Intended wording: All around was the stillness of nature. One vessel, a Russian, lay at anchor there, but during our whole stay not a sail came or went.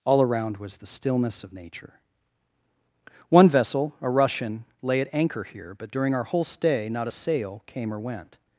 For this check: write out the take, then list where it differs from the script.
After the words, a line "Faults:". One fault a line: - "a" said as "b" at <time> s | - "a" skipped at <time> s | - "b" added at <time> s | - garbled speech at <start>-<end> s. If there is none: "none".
All around was the stillness of nature. One vessel, a Russian, lay at anchor here, but during our whole stay not a sail came or went.
Faults:
- "there" said as "here" at 5.4 s